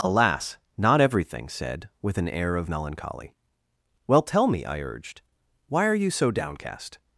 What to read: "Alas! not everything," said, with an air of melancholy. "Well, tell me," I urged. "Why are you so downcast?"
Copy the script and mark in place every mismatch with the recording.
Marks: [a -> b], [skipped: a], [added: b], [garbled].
"Alas! not everything," said, with an air of melancholy. "Well, tell me," I urged. "Why are you so downcast?"